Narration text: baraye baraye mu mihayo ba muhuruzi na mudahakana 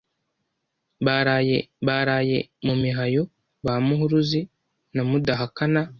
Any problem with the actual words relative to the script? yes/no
no